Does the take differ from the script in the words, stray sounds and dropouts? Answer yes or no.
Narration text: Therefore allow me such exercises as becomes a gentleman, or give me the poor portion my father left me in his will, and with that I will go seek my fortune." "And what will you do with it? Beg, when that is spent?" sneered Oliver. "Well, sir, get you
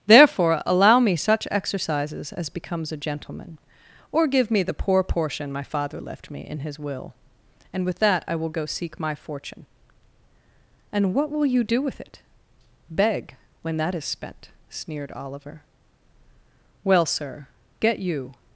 no